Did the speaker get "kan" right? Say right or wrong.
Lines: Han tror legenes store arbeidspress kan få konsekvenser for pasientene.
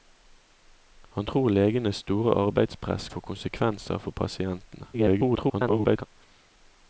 wrong